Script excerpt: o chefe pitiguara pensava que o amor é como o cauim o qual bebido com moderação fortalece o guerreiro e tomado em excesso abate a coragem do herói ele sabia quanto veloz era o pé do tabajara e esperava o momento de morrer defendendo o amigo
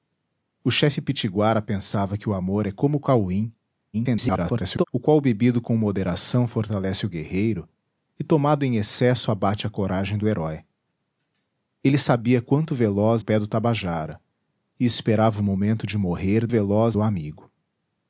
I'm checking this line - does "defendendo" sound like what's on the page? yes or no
no